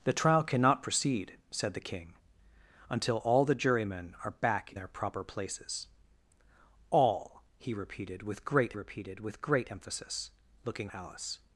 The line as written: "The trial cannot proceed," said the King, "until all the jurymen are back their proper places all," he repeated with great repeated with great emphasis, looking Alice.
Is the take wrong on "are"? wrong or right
right